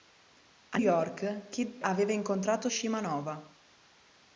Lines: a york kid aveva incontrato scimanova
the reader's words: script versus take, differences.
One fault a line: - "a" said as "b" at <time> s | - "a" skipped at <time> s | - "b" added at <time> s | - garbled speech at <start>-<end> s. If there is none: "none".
none